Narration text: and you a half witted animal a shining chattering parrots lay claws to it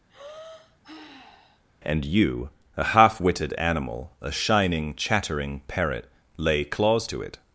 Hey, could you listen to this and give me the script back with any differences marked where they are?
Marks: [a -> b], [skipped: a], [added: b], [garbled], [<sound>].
[sigh] and you a half witted animal a shining chattering [parrots -> parrot] lay claws to it